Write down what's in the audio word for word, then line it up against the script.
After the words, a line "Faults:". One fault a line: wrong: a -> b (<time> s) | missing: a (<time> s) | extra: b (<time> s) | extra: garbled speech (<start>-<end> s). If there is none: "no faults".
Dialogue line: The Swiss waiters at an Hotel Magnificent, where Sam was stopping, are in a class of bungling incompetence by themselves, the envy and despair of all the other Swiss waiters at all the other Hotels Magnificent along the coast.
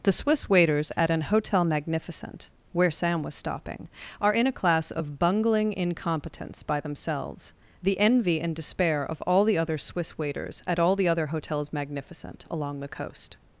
The Swiss waiters at an Hotel Magnificent, where Sam was stopping, are in a class of bungling incompetence by themselves, the envy and despair of all the other Swiss waiters at all the other Hotels Magnificent along the coast.
Faults:
no faults